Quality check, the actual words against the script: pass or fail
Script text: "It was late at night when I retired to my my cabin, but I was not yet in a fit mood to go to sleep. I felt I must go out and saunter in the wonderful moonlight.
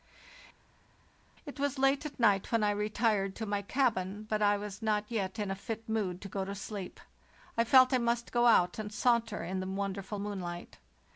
fail